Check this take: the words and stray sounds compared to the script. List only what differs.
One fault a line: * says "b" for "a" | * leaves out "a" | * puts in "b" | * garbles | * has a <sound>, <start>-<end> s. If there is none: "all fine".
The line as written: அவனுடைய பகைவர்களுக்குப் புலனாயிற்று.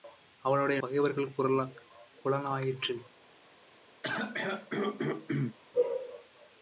* has a throat clearing, 4.0-5.6 s